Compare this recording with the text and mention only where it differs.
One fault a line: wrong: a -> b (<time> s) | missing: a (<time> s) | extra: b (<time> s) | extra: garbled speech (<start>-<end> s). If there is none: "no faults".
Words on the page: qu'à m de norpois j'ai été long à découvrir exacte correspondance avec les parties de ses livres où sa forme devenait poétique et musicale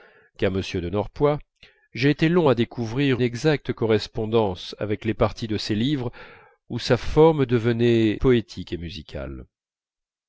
no faults